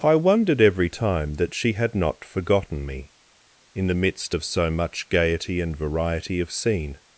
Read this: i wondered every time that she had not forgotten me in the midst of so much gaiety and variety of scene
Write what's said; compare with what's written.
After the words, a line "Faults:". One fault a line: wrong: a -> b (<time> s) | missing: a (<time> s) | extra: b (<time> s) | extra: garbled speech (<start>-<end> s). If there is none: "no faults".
i wondered every time that she had not forgotten me in the midst of so much gaiety and variety of scene
Faults:
no faults